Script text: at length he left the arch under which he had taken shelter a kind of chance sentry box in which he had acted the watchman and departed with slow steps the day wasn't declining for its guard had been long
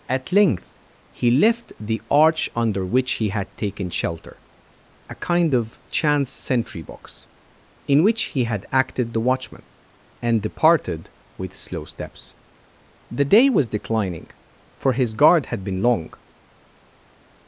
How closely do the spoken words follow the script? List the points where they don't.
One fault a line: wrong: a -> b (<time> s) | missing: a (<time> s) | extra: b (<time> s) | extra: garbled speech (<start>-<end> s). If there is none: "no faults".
wrong: wasn't -> was (13.5 s)
wrong: its -> his (14.9 s)